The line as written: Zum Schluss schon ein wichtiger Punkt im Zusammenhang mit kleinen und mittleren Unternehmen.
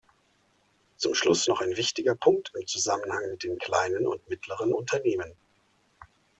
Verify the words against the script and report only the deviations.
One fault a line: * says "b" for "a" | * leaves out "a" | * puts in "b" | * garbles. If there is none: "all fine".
* says "noch" for "schon"
* puts in "den"